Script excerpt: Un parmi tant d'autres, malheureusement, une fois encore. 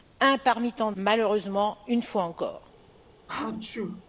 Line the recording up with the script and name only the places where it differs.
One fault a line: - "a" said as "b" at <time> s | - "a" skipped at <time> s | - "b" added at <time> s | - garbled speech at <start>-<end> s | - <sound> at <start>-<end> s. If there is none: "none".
- "d'autres" skipped at 0.9 s
- sneeze at 3.3-4.0 s